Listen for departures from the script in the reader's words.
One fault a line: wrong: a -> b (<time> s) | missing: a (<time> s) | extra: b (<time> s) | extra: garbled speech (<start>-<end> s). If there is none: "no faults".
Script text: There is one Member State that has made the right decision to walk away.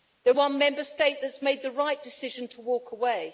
missing: is (0.3 s)